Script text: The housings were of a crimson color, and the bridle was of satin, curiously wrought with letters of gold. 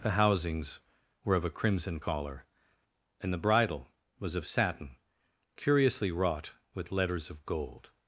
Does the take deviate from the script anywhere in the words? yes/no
yes